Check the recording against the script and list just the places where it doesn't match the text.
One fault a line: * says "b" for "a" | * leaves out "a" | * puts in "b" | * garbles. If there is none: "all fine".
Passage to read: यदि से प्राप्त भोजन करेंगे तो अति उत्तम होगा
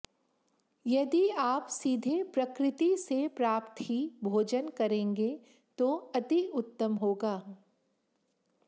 * puts in "आप सीधे प्रकृति"
* puts in "ही"